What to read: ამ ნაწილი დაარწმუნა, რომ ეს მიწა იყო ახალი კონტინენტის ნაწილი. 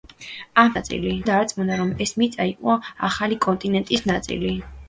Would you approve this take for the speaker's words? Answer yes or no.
yes